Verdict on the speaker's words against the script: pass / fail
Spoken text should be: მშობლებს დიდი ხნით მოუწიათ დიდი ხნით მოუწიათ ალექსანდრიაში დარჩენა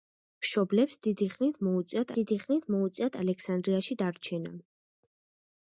pass